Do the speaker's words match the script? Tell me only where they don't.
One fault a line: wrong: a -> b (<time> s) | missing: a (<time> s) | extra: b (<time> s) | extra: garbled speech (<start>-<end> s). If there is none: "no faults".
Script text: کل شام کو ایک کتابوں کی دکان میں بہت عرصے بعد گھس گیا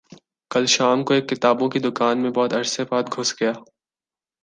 no faults